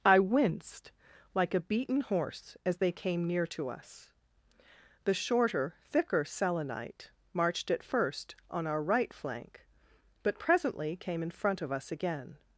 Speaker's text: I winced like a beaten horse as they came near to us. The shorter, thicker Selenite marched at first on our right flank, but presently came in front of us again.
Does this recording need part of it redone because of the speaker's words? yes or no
no